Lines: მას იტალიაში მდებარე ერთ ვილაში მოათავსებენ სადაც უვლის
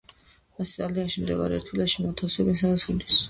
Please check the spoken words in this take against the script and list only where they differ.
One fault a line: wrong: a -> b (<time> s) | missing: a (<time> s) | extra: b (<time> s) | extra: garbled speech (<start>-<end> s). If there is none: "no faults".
no faults